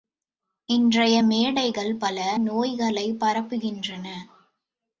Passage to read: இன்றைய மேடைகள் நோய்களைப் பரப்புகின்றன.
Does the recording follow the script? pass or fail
fail